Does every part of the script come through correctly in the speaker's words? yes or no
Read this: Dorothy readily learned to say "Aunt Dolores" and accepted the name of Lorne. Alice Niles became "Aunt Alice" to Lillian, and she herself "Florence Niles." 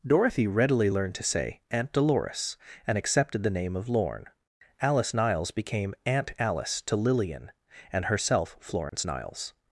no